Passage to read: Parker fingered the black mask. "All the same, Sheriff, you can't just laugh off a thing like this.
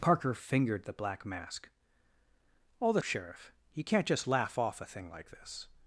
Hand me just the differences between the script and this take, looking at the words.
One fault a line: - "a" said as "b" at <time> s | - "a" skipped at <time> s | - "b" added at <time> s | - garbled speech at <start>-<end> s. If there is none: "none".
- "same" skipped at 3.0 s